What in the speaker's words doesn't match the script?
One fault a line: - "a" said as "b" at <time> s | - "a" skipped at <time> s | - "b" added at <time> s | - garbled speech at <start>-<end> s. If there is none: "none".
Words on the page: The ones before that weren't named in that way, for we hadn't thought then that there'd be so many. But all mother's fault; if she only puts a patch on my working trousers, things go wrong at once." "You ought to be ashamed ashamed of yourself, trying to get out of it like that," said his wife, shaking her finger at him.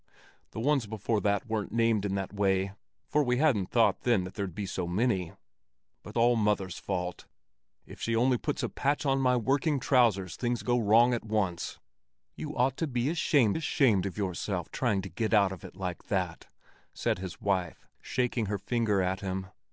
none